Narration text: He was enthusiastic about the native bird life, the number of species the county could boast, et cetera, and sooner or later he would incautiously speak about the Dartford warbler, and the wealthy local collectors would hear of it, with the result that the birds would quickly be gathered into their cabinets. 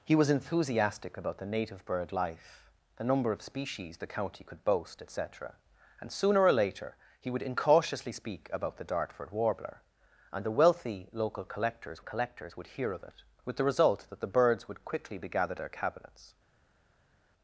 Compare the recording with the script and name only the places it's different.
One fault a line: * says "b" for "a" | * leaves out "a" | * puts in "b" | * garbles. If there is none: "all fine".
* puts in "collectors"
* leaves out "into"